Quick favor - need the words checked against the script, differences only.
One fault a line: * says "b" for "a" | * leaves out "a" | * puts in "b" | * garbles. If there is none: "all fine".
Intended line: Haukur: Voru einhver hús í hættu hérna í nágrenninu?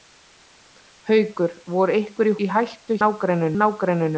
* leaves out "hús"
* says "nágrenninu" for "hérna"